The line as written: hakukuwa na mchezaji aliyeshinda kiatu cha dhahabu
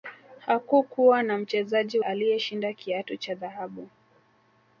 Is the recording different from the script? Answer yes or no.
no